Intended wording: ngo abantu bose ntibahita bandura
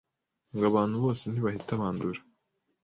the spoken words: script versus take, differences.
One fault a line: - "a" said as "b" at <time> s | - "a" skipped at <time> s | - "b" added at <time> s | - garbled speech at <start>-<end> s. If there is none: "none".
none